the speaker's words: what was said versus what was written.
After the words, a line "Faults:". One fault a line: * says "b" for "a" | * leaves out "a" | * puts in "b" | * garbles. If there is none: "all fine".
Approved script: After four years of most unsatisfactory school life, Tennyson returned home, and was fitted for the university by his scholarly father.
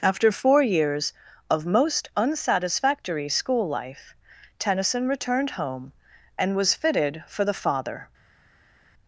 After four years of most unsatisfactory school life, Tennyson returned home, and was fitted for the father.
Faults:
* leaves out "university by his scholarly"